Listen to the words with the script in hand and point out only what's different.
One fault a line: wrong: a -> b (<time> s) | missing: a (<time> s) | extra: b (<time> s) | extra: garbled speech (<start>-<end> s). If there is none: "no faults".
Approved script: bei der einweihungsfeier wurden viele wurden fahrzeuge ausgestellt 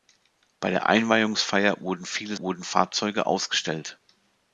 no faults